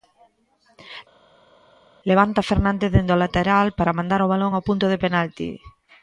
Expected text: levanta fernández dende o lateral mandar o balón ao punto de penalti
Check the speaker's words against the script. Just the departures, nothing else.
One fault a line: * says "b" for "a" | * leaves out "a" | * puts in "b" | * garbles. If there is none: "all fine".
* puts in "para"